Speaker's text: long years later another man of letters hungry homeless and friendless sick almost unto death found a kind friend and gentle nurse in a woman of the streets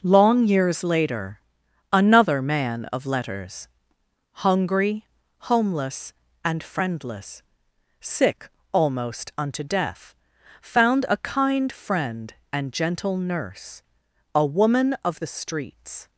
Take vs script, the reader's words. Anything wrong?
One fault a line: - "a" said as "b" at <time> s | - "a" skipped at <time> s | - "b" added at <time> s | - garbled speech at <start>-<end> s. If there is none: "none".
- "in" skipped at 13.8 s